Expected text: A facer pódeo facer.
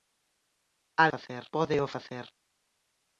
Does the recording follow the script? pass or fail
pass